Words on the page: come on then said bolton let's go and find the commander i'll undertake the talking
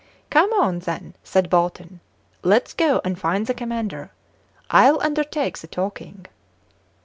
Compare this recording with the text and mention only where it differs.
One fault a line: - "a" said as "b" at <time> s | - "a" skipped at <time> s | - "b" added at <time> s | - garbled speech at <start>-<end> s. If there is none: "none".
none